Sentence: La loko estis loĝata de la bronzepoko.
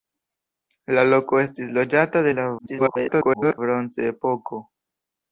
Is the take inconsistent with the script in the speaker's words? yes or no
yes